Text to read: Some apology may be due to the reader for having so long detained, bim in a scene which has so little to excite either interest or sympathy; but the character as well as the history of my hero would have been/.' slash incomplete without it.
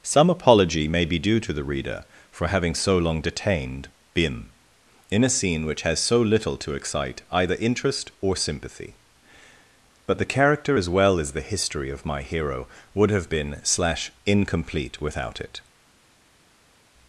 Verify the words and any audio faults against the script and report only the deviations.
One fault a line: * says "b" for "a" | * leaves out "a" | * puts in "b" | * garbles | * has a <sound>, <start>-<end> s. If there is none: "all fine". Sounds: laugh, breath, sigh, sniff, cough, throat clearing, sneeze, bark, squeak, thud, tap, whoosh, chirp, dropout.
all fine